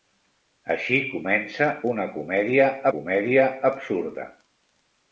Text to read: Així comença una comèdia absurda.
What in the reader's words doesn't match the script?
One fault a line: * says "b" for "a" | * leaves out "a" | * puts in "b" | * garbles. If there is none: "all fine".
* puts in "comèdia"